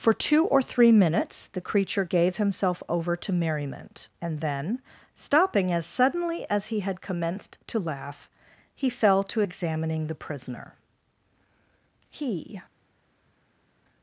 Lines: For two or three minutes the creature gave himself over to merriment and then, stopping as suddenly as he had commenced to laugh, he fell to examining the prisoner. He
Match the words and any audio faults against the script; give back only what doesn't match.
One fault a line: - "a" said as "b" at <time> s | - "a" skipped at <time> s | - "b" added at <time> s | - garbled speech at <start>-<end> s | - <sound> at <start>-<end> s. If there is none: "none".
none